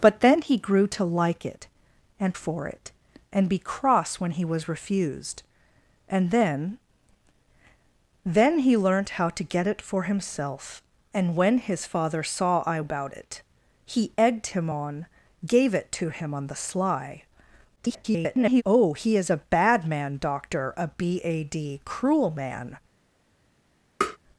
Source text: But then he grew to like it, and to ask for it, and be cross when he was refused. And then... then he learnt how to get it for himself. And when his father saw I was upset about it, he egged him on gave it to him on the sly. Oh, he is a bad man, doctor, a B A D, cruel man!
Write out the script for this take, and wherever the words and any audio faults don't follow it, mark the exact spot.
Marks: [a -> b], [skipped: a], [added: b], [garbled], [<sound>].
But then he grew to like it, and [skipped: to ask] for it, and be cross when he was refused. And then... then he learnt how to get it for himself. And when his father saw I [skipped: was upset] about it, he egged him on gave it to him on the sly. [garbled] Oh, he is a bad man, doctor, a B A D, cruel man! [tap]